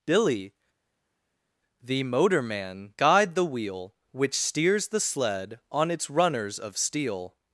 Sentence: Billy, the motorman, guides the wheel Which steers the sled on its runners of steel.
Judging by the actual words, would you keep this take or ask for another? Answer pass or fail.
fail